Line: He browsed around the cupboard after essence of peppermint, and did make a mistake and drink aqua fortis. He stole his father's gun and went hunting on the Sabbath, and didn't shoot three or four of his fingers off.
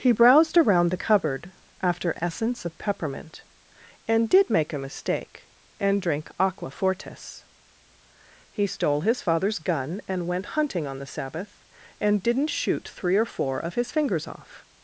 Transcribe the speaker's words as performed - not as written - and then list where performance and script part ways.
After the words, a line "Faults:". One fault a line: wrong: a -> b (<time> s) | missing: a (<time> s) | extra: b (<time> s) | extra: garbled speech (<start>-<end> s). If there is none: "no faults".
He browsed around the cupboard after essence of peppermint, and did make a mistake and drink aqua fortis. He stole his father's gun and went hunting on the Sabbath, and didn't shoot three or four of his fingers off.
Faults:
no faults